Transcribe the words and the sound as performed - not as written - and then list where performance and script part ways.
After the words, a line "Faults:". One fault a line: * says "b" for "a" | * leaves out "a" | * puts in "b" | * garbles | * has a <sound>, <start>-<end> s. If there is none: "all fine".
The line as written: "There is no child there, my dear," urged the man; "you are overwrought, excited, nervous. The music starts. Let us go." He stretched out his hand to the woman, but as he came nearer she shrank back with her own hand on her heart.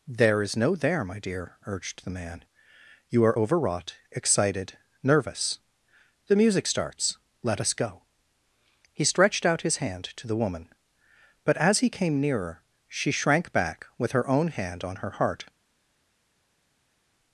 "There is no there, my dear," urged the man; "you are overwrought, excited, nervous. The music starts. Let us go." He stretched out his hand to the woman, but as he came nearer she shrank back with her own hand on her heart.
Faults:
* leaves out "child"